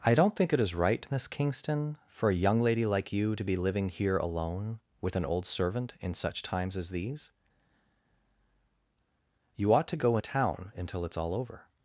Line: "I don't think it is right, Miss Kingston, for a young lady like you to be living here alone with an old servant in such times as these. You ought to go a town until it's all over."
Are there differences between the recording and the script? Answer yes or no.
no